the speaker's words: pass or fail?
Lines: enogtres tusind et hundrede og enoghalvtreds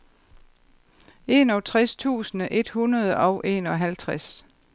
pass